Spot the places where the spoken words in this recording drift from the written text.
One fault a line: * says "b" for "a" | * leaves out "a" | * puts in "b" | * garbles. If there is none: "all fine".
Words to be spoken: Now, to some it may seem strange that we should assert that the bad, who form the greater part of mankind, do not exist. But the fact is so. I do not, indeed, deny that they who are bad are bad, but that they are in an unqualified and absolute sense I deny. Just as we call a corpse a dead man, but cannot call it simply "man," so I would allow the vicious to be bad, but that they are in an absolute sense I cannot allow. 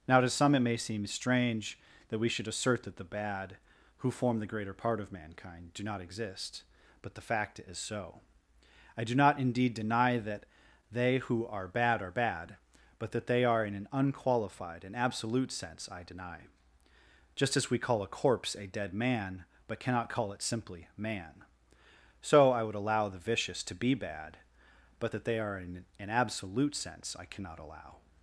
all fine